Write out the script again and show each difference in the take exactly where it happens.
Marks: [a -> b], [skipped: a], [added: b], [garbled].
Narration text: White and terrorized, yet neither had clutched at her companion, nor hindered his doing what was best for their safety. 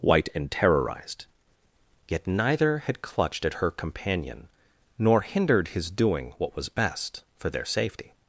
White and terrorized, yet neither had clutched at her companion, nor hindered his doing what was best for their safety.